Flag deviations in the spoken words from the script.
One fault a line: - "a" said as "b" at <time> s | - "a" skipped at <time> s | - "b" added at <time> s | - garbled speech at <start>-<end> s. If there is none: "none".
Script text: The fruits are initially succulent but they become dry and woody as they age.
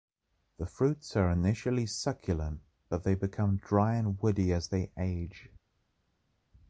none